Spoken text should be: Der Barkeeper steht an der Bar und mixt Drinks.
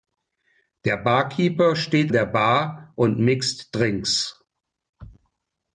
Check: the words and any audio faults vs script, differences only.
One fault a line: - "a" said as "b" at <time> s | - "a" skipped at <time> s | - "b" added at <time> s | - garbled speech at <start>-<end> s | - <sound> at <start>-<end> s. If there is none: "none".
- "an" skipped at 2.1 s